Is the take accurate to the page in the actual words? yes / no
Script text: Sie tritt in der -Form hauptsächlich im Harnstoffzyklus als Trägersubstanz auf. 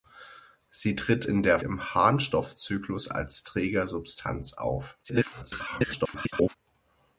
no